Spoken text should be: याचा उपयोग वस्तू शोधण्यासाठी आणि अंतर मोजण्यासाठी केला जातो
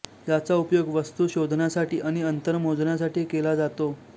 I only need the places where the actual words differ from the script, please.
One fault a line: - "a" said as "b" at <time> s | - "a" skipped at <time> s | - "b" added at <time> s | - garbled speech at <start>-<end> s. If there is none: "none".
none